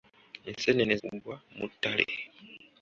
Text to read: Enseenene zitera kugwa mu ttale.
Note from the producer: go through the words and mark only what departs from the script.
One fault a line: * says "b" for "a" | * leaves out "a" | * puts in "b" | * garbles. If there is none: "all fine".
* leaves out "zitera"